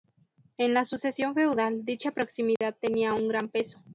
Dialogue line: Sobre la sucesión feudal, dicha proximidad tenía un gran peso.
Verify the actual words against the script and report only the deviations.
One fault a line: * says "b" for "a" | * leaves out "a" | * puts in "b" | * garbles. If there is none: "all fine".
* says "En" for "Sobre"